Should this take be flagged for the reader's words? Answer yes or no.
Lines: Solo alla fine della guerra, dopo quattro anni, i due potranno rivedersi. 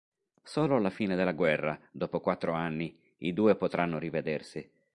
no